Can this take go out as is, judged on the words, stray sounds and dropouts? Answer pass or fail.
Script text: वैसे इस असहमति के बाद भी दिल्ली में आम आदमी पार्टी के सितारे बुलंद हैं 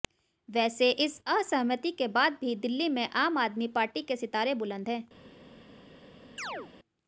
fail